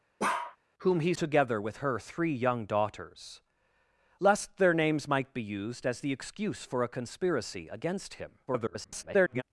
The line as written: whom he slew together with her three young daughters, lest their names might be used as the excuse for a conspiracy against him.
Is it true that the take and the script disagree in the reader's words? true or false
true